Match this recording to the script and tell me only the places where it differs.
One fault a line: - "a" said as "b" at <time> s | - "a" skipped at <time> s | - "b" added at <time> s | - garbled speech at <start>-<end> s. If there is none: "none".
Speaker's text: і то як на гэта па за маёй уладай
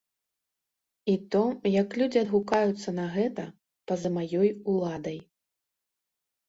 - "людзі адгукаюцца" added at 2.0 s